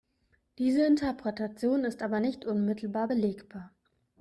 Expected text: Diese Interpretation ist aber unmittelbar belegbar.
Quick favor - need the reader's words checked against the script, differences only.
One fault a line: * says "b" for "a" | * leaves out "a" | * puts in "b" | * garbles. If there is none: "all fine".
* puts in "nicht"